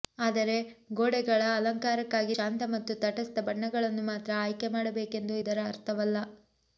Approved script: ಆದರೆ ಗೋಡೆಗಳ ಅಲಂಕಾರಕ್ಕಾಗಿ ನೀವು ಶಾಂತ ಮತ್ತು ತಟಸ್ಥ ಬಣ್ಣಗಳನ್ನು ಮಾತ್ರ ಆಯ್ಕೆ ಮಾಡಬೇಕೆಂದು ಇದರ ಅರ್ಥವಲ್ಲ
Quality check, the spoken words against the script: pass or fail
fail